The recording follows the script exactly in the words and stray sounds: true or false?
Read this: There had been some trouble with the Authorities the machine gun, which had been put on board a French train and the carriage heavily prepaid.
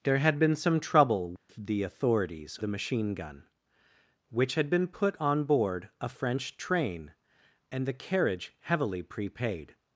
false